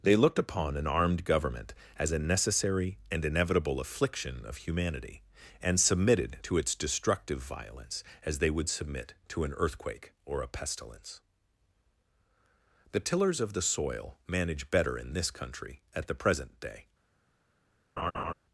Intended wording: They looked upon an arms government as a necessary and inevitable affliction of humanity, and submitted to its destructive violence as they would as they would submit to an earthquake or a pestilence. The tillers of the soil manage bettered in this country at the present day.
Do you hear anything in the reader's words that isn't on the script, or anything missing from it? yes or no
yes